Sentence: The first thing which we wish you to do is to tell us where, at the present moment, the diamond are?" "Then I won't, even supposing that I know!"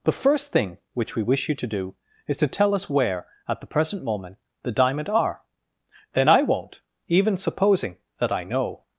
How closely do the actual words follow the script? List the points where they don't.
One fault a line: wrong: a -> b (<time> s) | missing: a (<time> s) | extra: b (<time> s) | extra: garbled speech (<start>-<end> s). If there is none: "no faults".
no faults